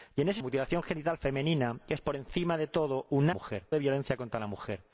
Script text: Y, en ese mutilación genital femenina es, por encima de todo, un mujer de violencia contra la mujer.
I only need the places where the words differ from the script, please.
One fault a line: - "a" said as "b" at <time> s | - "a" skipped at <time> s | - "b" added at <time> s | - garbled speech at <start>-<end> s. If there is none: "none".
none